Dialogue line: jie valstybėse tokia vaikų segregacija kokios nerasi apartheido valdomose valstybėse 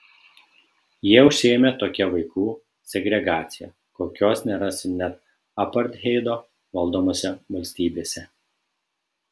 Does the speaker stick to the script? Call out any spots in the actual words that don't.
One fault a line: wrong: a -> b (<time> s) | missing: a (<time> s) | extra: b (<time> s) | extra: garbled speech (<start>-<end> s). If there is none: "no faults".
wrong: valstybėse -> užsiėmė (1.3 s)
extra: net (5.0 s)